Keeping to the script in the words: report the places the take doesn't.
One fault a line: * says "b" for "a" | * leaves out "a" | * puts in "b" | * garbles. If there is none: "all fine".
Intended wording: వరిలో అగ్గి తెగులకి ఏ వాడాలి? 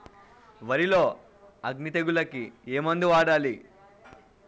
* puts in "మందు"